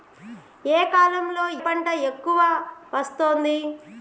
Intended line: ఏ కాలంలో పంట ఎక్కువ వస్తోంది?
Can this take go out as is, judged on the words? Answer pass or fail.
pass